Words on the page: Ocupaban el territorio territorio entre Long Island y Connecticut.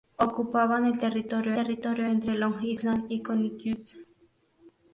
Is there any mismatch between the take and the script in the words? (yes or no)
no